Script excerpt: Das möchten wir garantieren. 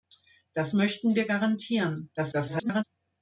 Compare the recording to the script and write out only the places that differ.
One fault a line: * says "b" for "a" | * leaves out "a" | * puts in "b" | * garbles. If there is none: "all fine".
* garbles